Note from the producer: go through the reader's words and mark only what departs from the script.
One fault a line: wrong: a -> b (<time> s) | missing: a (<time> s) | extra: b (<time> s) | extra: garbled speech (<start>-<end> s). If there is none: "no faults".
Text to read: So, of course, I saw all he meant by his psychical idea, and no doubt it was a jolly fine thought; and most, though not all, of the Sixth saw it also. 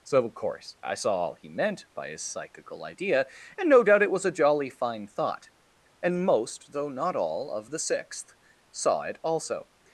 no faults